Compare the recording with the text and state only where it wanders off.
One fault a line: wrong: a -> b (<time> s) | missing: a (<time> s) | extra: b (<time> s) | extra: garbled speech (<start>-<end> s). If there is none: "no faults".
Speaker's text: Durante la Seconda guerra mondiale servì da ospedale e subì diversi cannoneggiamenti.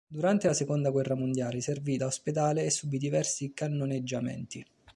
no faults